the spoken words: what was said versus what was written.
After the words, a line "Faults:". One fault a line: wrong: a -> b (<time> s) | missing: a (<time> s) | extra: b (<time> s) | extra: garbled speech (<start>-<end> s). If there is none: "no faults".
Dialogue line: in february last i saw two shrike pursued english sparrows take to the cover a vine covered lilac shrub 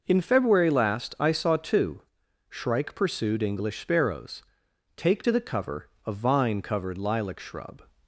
in february last i saw two shrike pursued english sparrows take to the cover a vine covered lilac shrub
Faults:
no faults